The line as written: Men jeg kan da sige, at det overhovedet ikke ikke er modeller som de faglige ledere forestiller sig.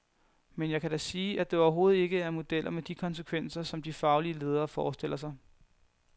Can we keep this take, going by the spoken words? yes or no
no